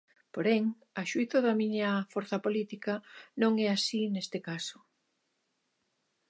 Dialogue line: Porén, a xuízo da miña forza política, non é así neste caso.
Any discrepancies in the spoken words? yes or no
no